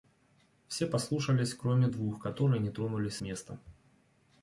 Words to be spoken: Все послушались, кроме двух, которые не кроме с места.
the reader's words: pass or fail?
fail